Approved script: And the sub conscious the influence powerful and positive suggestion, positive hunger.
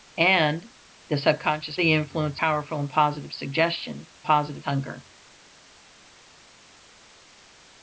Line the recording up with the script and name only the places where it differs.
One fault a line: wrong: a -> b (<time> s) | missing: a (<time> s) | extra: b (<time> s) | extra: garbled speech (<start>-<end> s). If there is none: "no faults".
no faults